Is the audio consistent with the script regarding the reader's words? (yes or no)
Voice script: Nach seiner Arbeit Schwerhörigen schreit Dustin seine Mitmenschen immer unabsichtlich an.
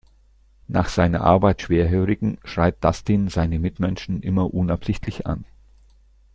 yes